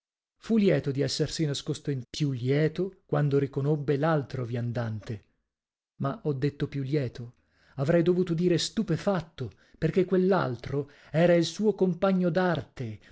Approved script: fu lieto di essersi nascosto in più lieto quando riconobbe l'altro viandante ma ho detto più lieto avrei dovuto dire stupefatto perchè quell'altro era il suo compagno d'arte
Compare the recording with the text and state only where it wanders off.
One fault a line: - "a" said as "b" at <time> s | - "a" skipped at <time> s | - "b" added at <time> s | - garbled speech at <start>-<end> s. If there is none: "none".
none